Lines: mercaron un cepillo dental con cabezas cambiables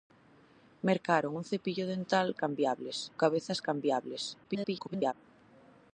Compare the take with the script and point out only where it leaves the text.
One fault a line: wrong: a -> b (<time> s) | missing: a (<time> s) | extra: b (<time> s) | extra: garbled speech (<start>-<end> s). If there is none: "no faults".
wrong: con -> cambiables (2.3 s)
extra: garbled speech (4.4-5.1 s)